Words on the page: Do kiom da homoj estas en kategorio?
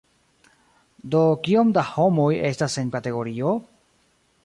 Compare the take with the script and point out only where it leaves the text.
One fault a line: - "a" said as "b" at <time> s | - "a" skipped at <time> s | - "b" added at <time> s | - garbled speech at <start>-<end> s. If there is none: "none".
none